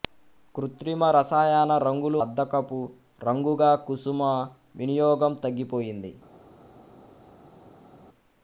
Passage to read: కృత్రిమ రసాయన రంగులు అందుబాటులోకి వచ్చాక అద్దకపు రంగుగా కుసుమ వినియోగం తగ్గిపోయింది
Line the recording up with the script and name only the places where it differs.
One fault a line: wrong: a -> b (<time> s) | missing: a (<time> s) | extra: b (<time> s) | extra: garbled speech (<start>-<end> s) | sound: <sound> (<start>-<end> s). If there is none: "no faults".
missing: అందుబాటులోకి వచ్చాక (2.2 s)